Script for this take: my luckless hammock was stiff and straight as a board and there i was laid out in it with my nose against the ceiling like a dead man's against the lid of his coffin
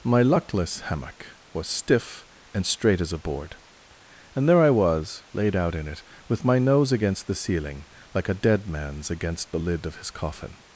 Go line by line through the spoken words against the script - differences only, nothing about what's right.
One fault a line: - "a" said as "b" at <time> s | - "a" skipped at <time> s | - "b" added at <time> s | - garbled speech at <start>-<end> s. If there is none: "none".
none